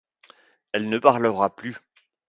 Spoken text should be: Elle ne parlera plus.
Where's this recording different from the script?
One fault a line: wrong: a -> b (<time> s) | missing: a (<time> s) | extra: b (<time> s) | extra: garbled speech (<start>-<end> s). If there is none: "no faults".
no faults